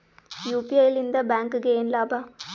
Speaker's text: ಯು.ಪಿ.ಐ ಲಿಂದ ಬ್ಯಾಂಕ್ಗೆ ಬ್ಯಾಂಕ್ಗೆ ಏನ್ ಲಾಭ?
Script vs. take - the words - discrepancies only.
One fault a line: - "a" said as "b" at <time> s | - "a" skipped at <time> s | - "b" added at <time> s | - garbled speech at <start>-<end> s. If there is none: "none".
- "ಬ್ಯಾಂಕ್ಗೆ" skipped at 1.7 s